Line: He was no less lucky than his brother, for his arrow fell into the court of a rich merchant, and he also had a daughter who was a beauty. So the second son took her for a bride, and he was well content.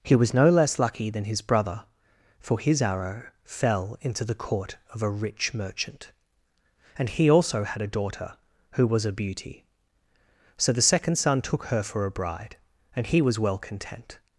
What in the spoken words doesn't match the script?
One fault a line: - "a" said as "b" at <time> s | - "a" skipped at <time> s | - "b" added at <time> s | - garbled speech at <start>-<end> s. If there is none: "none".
none